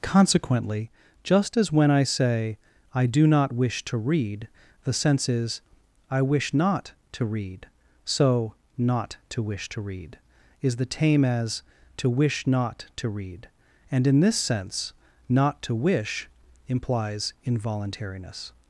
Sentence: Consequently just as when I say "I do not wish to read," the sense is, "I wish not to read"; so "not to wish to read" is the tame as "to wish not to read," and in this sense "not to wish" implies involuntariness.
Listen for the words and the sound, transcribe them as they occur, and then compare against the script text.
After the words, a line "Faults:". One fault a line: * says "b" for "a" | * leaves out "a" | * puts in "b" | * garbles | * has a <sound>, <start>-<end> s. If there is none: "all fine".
Consequently just as when I say "I do not wish to read," the sense is, "I wish not to read"; so "not to wish to read" is the tame as "to wish not to read," and in this sense "not to wish" implies involuntariness.
Faults:
all fine